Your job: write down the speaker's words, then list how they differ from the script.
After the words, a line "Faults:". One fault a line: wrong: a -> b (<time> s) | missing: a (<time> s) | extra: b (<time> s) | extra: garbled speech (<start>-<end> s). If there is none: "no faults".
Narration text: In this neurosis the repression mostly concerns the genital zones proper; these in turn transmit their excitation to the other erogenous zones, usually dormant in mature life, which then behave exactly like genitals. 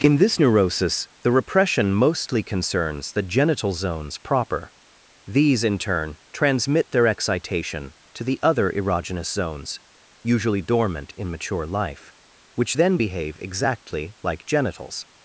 In this neurosis the repression mostly concerns the genital zones proper; these in turn transmit their excitation to the other erogenous zones, usually dormant in mature life, which then behave exactly like genitals.
Faults:
no faults